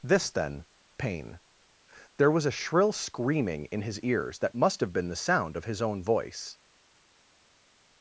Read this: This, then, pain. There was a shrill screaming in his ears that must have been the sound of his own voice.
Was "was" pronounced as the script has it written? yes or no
yes